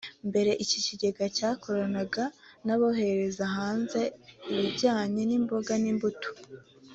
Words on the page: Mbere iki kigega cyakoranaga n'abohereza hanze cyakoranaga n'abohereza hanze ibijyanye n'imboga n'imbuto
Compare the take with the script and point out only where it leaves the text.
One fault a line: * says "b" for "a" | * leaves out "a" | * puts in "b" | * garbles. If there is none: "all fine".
* leaves out "cyakoranaga n'abohereza hanze"